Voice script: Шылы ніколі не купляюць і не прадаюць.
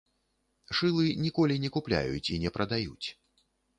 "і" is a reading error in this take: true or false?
false